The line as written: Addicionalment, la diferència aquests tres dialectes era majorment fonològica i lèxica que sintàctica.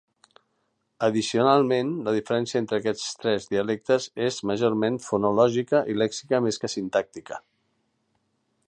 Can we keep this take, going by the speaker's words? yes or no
no